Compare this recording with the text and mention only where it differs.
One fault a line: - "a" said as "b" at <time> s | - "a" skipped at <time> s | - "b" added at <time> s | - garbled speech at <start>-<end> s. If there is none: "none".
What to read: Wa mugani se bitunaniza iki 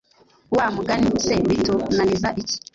none